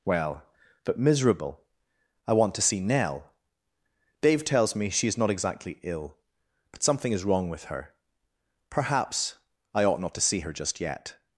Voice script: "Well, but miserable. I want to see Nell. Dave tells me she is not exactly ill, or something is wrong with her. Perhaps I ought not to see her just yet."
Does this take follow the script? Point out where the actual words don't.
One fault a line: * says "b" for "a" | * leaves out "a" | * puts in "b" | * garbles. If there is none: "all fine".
* says "but" for "or"